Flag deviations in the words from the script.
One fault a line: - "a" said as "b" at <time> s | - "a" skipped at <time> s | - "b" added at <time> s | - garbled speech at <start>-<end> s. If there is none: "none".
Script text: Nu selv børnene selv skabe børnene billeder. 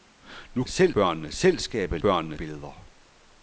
none